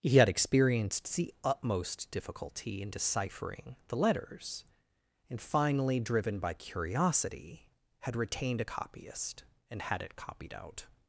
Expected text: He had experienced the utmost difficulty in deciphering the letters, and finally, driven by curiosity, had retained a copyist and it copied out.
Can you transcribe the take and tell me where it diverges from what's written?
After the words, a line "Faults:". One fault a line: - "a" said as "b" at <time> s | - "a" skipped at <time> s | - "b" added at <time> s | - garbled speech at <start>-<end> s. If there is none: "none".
He had experienced the utmost difficulty in deciphering the letters, and finally, driven by curiosity, had retained a copyist and had it copied out.
Faults:
- "had" added at 9.8 s